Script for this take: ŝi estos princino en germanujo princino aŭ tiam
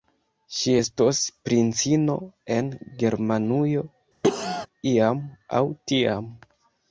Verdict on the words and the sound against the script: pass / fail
fail